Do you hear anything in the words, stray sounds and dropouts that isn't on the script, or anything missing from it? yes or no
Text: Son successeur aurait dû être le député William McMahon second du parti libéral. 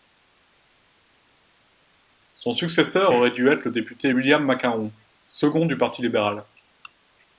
no